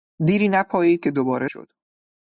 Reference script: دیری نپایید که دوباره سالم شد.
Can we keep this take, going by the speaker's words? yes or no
no